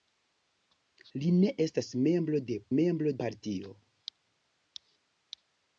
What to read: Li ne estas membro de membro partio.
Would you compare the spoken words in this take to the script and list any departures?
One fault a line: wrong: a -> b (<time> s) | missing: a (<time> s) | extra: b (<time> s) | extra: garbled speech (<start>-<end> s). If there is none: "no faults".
no faults